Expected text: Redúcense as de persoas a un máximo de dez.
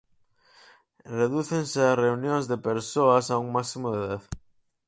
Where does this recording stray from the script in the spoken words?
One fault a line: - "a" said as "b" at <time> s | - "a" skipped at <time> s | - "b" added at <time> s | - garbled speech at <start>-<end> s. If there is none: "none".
- "reunións" added at 2.0 s